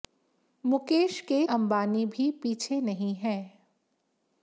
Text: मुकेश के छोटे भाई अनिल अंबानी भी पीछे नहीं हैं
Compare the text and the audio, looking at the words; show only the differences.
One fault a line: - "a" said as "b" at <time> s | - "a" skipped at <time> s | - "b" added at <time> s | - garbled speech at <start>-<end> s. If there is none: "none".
- "छोटे भाई अनिल" skipped at 1.4 s